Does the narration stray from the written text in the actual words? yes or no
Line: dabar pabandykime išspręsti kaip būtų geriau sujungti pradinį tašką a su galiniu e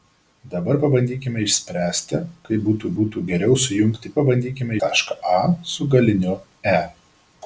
yes